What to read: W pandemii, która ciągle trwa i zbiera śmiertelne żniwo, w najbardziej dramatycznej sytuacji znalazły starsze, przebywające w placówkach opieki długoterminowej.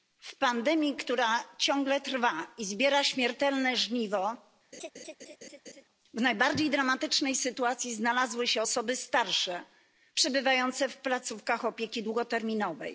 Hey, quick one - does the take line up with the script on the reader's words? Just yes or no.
no